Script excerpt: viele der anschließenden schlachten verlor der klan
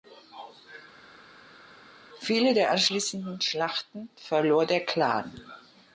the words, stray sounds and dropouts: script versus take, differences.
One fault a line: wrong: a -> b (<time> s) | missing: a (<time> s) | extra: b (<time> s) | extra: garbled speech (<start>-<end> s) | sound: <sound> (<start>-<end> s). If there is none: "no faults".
no faults